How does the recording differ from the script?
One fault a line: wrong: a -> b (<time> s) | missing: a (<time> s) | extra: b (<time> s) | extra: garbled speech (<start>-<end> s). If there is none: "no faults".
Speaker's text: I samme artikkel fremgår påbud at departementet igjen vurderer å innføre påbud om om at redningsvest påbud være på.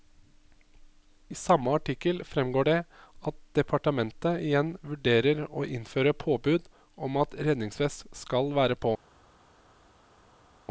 wrong: påbud -> det (2.7 s)
missing: om (7.2 s)
wrong: påbud -> skal (8.2 s)